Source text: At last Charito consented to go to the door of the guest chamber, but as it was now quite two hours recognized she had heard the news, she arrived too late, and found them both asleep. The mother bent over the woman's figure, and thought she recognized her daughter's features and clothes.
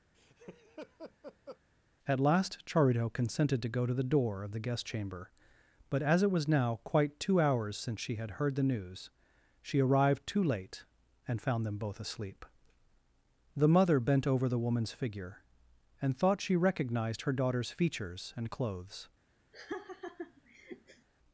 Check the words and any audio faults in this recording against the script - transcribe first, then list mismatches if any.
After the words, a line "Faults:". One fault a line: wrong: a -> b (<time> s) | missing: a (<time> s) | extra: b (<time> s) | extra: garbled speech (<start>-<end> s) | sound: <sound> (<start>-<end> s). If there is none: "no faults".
At last Charito consented to go to the door of the guest chamber, but as it was now quite two hours since she had heard the news, she arrived too late, and found them both asleep. The mother bent over the woman's figure, and thought she recognized her daughter's features and clothes.
Faults:
sound: laugh (0.1-1.6 s)
wrong: recognized -> since (7.8 s)
sound: laugh (19.5-21.1 s)